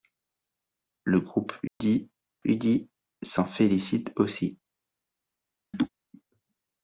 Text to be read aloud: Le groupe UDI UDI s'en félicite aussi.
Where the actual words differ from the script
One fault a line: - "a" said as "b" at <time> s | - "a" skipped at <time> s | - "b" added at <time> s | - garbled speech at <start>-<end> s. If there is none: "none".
none